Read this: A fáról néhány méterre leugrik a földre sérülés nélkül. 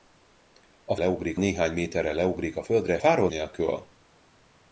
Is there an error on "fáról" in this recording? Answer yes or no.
yes